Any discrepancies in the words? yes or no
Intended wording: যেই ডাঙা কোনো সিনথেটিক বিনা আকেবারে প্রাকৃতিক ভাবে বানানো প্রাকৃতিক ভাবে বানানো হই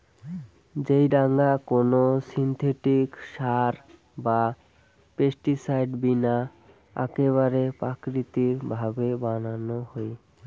yes